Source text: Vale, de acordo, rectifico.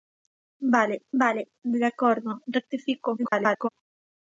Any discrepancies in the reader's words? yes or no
yes